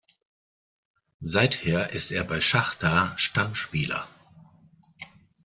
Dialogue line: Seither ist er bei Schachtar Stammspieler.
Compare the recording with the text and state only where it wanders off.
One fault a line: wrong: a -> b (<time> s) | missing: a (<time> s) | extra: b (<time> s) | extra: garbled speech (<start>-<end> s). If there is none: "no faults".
no faults